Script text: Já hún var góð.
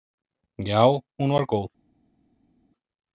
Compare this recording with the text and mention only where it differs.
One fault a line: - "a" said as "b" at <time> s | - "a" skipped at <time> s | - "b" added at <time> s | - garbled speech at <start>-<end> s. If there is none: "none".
none